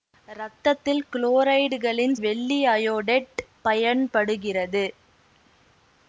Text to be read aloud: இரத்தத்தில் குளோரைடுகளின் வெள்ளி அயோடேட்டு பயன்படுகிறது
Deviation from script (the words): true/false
false